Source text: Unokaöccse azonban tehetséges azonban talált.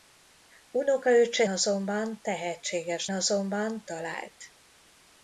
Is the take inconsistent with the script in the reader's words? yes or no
no